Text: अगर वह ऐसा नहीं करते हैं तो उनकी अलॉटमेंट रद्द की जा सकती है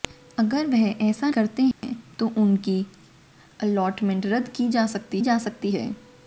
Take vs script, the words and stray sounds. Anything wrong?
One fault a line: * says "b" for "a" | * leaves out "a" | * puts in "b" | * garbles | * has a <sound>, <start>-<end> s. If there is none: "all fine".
* leaves out "नहीं"
* has a dropout, 1.7-1.8 s
* puts in "जा सकती"